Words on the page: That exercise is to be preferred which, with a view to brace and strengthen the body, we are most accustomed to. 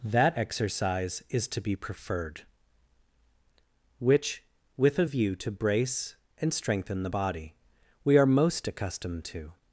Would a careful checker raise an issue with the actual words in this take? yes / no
no